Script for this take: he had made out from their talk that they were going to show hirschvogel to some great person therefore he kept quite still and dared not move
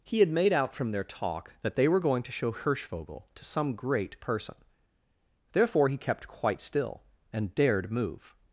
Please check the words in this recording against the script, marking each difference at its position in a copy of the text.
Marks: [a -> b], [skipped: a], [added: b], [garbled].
he had made out from their talk that they were going to show hirschvogel to some great person therefore he kept quite still and dared [skipped: not] move